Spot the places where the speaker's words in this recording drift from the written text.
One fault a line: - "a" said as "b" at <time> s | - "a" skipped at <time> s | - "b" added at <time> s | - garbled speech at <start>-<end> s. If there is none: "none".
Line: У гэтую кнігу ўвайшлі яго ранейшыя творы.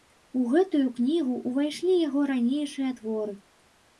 none